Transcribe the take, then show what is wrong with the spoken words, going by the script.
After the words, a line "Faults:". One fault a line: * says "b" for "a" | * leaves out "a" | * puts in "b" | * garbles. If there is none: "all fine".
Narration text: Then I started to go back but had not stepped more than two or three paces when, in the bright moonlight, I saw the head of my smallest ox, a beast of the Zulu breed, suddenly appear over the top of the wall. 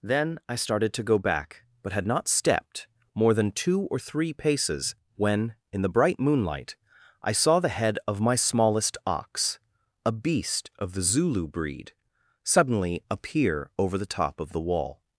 Then I started to go back but had not stepped more than two or three paces when, in the bright moonlight, I saw the head of my smallest ox, a beast of the Zulu breed, suddenly appear over the top of the wall.
Faults:
all fine